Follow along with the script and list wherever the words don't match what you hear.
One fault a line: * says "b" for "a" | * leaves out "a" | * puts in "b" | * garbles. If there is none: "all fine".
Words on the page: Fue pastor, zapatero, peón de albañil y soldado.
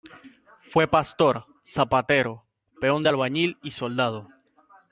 all fine